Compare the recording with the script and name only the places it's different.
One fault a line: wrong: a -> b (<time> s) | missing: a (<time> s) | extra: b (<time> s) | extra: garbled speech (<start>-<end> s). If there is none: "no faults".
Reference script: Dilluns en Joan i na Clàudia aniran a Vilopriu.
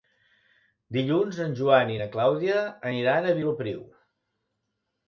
no faults